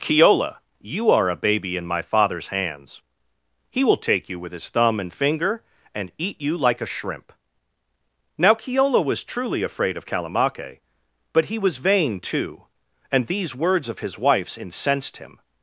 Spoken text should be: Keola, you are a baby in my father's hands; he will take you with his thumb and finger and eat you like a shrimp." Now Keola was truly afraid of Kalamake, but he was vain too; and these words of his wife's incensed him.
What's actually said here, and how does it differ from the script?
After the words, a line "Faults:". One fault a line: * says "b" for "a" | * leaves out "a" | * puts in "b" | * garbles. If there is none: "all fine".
Keola, you are a baby in my father's hands; he will take you with his thumb and finger and eat you like a shrimp." Now Keola was truly afraid of Kalamake, but he was vain too; and these words of his wife's incensed him.
Faults:
all fine